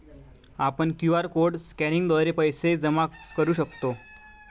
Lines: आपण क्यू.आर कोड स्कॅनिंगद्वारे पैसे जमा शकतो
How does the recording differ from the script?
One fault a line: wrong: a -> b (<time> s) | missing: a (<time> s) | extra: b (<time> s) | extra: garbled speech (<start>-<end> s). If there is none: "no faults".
extra: करू (3.4 s)